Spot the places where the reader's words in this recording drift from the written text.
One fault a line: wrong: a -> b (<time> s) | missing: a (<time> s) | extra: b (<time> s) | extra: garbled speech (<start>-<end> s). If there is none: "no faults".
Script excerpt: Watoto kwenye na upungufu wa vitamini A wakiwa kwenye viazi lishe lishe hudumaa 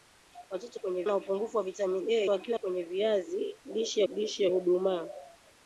no faults